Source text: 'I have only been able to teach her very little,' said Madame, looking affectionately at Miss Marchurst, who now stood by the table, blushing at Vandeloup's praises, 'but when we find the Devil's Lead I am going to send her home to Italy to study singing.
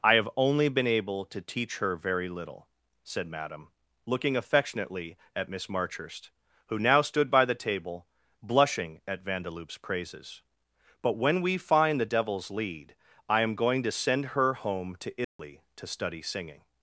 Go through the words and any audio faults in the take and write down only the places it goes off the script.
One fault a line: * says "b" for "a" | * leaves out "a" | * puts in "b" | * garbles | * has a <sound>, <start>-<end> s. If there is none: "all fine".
* has a dropout, 15.2-15.4 s